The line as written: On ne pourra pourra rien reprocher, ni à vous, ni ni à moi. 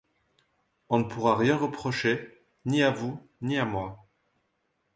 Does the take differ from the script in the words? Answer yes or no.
yes